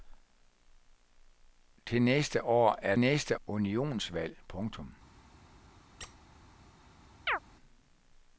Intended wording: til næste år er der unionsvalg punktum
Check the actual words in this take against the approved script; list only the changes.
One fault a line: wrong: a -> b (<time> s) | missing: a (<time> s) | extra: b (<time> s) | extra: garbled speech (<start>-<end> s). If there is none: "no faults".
wrong: der -> næste (3.0 s)